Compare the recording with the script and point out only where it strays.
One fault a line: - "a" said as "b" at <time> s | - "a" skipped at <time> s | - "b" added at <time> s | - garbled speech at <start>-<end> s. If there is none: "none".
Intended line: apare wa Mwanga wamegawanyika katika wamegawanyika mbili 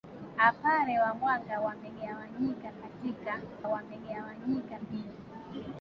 none